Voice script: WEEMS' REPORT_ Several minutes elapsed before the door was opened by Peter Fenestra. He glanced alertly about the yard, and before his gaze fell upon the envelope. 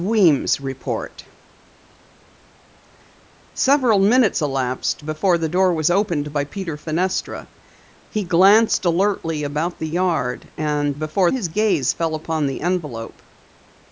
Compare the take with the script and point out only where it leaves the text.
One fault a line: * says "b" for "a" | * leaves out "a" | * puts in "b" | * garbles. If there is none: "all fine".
all fine